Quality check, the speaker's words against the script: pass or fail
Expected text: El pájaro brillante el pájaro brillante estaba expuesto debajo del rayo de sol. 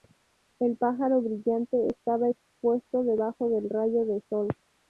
fail